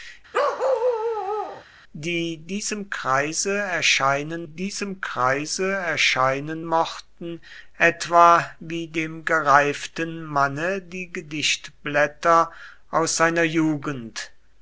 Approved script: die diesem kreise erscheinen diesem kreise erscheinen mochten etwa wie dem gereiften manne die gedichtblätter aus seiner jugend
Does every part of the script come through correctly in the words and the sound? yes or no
no